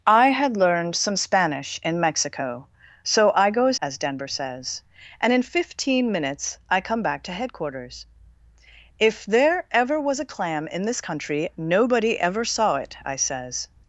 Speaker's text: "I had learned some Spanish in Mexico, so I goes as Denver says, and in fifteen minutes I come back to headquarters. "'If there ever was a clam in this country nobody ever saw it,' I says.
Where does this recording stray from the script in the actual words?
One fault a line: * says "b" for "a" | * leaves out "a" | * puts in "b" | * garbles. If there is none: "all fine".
all fine